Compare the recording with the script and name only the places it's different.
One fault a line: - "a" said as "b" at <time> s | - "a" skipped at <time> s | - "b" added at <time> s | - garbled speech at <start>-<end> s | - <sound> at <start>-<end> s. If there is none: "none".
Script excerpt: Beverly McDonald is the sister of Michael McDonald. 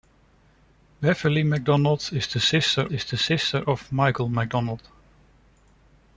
- "is the sister" added at 2.9 s